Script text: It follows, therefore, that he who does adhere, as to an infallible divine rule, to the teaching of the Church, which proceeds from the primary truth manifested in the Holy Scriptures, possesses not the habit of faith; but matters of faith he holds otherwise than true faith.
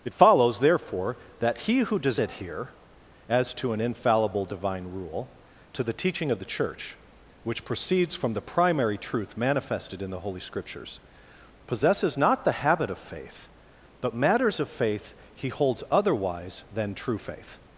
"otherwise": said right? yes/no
yes